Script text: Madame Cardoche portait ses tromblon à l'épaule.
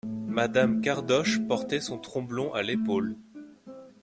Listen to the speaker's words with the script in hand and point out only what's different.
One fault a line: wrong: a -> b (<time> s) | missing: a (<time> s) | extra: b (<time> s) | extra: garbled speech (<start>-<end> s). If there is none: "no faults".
wrong: ses -> son (1.8 s)